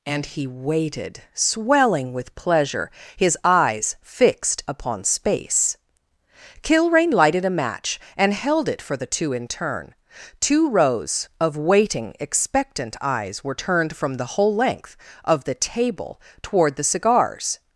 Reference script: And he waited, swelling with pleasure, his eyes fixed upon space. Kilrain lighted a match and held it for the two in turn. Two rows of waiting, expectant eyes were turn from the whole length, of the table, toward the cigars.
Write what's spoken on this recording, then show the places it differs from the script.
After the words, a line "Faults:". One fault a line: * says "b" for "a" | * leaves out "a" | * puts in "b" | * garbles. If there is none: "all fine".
And he waited, swelling with pleasure, his eyes fixed upon space. Kilrain lighted a match and held it for the two in turn. Two rows of waiting, expectant eyes were turned from the whole length, of the table, toward the cigars.
Faults:
* says "turned" for "turn"